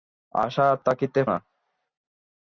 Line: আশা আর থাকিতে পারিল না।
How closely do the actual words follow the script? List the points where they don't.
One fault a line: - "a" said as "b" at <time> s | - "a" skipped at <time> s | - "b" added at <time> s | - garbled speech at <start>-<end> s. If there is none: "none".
- "পারিল" skipped at 1.2 s